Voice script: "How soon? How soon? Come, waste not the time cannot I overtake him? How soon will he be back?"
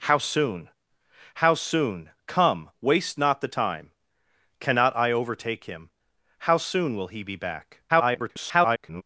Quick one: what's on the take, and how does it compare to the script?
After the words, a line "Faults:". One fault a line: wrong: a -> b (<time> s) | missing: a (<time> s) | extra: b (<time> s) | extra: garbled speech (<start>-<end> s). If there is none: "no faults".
"How soon? How soon? Come, waste not the time cannot I overtake him? How soon will he be back?" [garbled]
Faults:
extra: garbled speech (7.9-9.0 s)